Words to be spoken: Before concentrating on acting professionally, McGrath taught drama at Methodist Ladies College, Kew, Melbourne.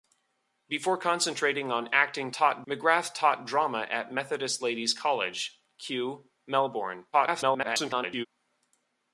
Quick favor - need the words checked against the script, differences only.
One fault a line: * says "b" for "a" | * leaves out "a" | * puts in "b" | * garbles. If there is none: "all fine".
* says "taught" for "professionally"
* garbles